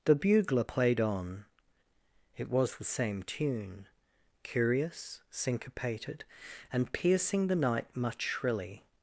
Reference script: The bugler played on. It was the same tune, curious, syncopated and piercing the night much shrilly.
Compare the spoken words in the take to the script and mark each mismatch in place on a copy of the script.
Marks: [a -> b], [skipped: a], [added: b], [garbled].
The bugler played on. It was the same tune, curious, syncopated and piercing the night much shrilly.